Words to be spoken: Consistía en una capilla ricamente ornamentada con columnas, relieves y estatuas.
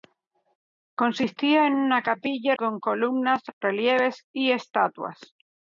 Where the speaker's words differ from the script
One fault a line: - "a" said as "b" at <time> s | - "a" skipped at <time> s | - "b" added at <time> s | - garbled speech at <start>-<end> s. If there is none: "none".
- "ricamente ornamentada" skipped at 2.5 s